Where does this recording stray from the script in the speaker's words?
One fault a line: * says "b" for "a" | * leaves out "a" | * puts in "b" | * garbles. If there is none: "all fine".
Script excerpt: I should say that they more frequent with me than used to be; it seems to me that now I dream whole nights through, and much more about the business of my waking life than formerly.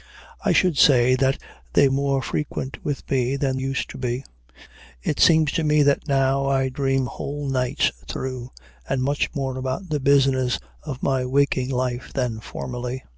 all fine